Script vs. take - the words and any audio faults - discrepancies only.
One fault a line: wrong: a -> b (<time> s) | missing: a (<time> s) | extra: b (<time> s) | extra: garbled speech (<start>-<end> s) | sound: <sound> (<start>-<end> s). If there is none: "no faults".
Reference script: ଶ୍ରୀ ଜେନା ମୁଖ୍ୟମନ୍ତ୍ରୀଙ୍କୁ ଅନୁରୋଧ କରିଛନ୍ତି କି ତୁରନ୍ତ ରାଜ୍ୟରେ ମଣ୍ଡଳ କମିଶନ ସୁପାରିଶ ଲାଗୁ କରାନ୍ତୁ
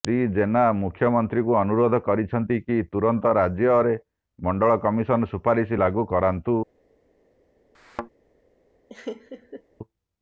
sound: thud (7.7-8.1 s)
sound: laugh (8.9-9.6 s)